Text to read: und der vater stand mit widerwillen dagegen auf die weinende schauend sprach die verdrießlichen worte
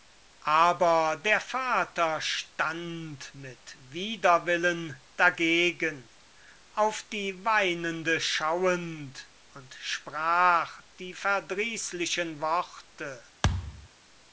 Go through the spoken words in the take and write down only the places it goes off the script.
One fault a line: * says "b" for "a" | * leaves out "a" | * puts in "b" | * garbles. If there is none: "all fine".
* says "aber" for "und"
* puts in "und"